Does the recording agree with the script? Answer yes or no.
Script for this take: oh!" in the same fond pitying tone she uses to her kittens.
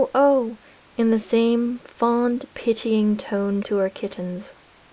no